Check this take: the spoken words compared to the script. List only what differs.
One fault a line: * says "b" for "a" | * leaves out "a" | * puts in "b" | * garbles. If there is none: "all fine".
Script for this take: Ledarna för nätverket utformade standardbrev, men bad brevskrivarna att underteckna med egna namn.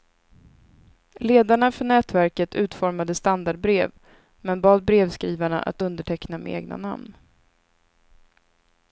all fine